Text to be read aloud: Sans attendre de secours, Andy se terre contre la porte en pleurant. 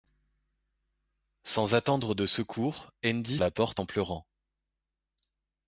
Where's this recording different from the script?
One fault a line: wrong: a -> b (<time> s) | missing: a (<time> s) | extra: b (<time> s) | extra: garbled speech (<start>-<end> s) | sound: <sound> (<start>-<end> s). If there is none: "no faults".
missing: se terre contre (3.4 s)